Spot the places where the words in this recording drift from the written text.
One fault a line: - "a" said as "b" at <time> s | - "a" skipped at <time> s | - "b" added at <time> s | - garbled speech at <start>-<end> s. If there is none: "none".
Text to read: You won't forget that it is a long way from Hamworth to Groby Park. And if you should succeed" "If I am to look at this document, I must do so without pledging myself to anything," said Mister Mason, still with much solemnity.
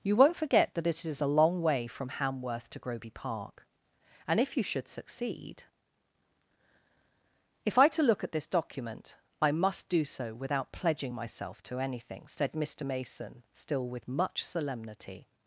- "am" skipped at 7.9 s